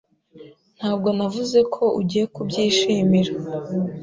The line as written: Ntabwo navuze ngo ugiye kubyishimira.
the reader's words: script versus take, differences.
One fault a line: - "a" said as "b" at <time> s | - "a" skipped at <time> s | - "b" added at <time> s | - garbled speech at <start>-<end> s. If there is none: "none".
- "ngo" said as "ko" at 1.8 s